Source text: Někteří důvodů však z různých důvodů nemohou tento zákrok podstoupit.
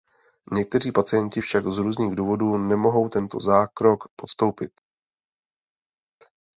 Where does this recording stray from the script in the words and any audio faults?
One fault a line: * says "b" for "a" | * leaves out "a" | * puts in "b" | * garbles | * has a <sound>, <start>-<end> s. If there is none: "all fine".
* says "pacienti" for "důvodů"